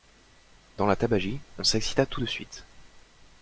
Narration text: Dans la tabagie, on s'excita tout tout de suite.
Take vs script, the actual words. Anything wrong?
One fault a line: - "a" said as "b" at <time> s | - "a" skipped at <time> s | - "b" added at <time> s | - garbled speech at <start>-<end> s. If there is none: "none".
- "tout" skipped at 2.2 s